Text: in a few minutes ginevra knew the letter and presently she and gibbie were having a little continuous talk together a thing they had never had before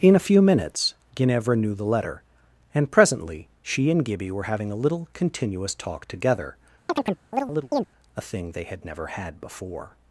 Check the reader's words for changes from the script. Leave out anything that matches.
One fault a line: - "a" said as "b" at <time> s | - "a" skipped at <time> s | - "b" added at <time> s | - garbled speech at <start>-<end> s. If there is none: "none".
none